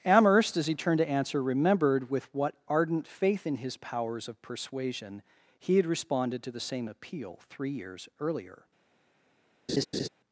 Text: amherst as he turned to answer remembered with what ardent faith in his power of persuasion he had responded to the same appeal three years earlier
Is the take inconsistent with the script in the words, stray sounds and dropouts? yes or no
yes